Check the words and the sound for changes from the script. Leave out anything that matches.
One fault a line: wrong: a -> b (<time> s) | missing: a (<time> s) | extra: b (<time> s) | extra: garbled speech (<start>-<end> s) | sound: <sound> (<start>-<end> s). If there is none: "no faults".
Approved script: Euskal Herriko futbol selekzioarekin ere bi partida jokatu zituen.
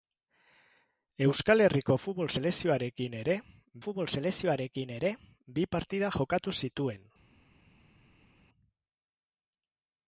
extra: futbol selekzioarekin ere (3.8 s)